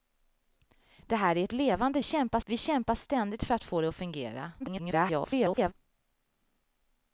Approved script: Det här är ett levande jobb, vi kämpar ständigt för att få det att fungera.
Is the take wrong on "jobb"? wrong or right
wrong